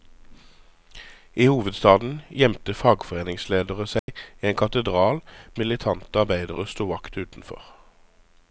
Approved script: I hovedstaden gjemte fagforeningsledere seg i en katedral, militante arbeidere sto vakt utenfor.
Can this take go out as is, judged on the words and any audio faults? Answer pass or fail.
fail